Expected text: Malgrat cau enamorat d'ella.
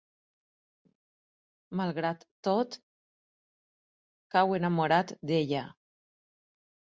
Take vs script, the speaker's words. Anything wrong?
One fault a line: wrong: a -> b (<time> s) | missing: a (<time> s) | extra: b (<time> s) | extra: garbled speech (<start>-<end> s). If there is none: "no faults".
extra: tot (2.5 s)